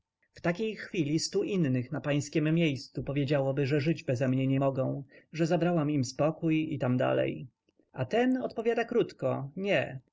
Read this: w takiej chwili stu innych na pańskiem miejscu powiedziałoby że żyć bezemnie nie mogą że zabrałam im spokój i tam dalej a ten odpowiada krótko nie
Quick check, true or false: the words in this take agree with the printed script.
true